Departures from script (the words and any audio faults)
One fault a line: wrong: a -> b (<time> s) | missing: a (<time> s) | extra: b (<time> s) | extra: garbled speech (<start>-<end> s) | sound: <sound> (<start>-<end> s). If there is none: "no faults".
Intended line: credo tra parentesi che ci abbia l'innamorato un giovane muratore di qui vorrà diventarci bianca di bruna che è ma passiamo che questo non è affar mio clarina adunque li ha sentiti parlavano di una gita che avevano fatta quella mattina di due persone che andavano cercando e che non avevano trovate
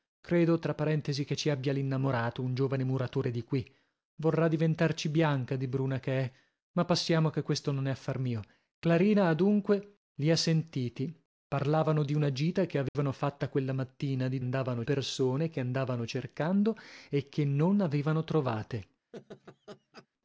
sound: dropout (12.9-13.0 s)
wrong: due -> andavano (14.4 s)
sound: laugh (19.1-20.1 s)